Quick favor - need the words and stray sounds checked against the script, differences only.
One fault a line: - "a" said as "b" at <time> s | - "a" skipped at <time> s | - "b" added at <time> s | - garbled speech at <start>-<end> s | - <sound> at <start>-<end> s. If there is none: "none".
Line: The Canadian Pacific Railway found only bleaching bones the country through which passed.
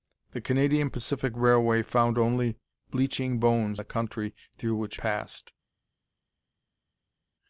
none